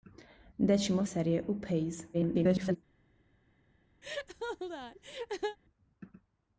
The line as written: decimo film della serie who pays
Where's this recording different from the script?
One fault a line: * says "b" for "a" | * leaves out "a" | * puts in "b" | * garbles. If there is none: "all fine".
* leaves out "film della"
* garbles